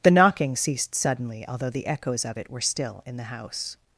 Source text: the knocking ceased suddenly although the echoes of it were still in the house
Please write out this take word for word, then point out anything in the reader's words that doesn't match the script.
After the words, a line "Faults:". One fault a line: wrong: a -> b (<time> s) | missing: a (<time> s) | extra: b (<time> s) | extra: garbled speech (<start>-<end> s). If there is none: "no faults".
the knocking ceased suddenly although the echoes of it were still in the house
Faults:
no faults